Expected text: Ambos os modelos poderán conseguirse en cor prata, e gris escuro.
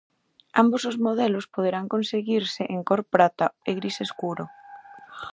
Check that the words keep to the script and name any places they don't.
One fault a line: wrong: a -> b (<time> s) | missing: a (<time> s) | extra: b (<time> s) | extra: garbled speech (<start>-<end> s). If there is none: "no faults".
no faults